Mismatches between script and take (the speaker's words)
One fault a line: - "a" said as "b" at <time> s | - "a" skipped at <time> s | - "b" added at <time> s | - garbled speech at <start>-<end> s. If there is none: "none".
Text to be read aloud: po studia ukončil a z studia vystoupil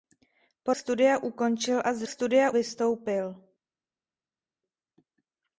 none